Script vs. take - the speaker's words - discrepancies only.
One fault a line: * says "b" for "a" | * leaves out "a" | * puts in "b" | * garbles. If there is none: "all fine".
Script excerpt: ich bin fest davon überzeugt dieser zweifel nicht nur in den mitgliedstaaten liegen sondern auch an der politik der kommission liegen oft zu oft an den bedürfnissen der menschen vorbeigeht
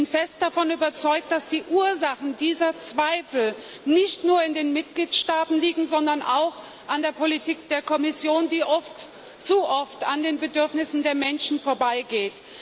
* puts in "dass die ursachen"
* says "die" for "liegen"